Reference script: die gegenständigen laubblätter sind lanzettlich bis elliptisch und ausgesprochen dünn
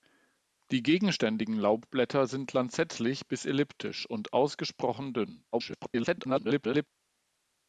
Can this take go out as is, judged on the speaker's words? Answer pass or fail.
fail